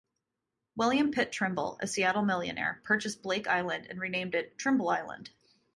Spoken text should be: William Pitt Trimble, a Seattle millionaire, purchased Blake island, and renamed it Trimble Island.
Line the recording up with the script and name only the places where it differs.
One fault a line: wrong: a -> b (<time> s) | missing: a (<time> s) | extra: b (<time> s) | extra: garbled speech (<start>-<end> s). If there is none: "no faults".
no faults